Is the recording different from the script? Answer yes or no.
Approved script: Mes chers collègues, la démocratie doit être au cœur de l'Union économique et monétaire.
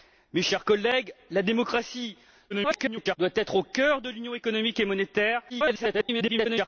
yes